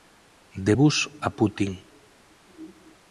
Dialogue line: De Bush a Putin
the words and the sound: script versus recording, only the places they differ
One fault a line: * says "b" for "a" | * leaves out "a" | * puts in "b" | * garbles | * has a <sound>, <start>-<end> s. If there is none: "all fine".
all fine